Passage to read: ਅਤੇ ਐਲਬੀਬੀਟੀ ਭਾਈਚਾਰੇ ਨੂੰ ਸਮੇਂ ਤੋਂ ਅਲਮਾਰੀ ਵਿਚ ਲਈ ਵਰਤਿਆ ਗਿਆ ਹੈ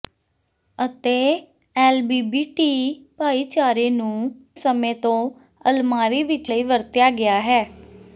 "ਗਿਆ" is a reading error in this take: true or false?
false